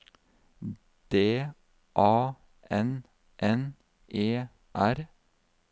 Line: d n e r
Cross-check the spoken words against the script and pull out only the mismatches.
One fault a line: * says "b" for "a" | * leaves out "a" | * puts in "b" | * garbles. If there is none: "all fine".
* puts in "a n"